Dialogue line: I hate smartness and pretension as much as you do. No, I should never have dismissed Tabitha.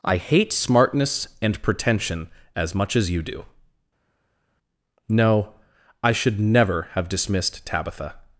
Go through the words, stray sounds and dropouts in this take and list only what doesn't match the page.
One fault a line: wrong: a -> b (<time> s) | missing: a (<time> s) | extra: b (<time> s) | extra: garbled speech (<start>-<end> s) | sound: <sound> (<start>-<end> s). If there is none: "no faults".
no faults